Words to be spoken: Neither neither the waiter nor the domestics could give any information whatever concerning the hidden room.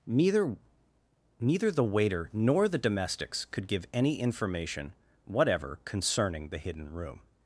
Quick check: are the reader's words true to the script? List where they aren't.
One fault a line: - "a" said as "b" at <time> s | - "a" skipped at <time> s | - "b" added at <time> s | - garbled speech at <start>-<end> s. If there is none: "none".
none